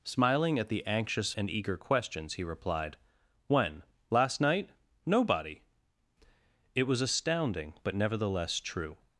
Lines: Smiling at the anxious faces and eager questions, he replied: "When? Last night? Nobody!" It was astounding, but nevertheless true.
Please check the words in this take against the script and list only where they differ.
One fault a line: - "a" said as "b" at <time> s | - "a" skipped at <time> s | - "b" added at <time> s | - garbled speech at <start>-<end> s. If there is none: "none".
- "faces" skipped at 1.3 s